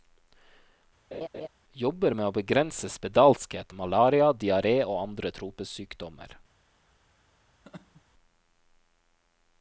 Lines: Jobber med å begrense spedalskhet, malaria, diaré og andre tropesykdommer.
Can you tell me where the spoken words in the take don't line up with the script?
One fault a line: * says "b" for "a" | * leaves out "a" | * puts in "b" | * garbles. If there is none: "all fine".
all fine